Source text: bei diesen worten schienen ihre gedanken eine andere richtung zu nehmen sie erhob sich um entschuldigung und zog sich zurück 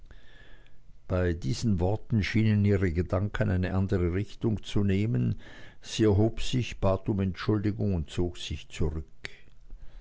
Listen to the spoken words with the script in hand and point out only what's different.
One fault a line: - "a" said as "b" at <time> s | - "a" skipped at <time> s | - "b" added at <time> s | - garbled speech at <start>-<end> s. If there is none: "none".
- "bat" added at 6.8 s